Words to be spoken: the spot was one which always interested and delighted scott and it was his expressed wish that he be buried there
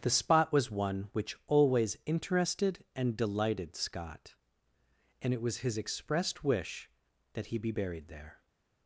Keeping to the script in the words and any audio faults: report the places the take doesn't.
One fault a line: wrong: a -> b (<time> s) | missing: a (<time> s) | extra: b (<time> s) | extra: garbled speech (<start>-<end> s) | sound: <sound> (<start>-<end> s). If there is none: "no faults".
no faults